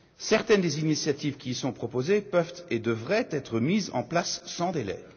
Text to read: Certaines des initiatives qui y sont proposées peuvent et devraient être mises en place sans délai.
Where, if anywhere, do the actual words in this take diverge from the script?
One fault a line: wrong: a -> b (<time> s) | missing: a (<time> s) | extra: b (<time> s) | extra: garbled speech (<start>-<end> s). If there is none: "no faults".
no faults